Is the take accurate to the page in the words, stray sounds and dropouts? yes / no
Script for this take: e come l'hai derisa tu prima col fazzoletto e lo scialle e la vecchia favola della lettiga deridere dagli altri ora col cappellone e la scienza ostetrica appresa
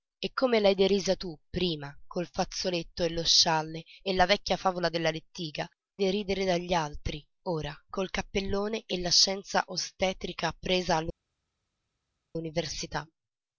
yes